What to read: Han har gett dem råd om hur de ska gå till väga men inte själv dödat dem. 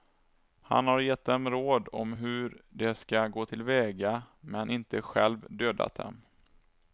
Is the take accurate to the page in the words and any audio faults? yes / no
yes